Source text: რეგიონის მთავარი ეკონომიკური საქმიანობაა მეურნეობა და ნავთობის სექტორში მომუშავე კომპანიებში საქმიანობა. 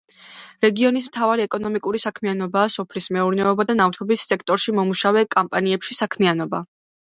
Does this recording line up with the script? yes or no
no